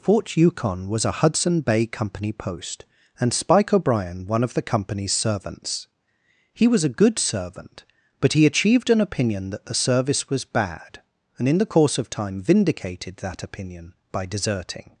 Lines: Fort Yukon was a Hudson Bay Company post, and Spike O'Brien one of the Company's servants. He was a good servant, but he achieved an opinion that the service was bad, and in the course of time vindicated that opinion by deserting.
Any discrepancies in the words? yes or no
no